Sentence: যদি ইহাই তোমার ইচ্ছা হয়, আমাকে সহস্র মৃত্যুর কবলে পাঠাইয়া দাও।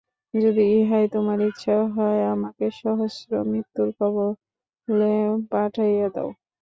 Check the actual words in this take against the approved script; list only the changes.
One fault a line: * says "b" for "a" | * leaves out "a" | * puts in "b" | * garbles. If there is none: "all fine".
all fine